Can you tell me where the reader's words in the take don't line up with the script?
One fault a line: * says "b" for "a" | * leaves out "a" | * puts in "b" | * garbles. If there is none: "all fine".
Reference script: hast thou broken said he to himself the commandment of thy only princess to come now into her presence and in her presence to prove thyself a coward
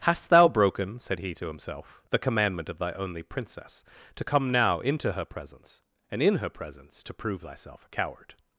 all fine